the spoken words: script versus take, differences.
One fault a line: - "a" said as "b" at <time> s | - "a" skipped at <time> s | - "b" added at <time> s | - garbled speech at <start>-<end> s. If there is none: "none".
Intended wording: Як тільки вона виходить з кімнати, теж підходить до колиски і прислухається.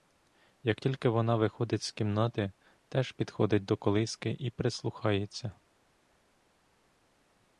none